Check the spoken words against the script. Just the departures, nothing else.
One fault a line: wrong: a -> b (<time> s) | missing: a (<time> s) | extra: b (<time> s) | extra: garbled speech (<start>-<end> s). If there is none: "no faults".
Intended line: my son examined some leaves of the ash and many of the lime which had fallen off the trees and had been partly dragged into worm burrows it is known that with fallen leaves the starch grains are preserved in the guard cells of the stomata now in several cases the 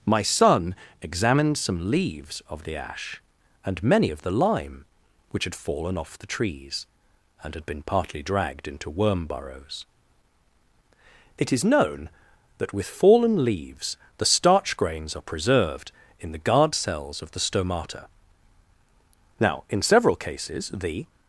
no faults